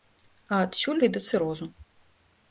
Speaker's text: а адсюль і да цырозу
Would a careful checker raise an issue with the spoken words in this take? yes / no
no